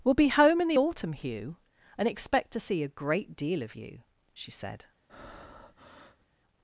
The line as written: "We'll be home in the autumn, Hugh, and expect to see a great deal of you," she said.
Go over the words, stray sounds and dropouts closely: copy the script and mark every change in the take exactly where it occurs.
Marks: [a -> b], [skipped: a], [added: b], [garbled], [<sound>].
"We'll be home in the autumn, Hugh, and expect to see a great deal of you," she said. [breath]